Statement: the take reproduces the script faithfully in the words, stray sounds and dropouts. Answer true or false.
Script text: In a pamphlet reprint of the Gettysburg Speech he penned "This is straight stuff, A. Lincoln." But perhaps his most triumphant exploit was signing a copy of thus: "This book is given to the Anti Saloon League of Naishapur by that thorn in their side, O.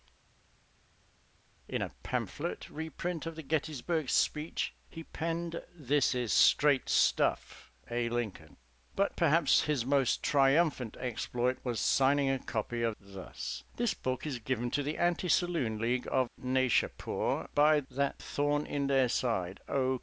true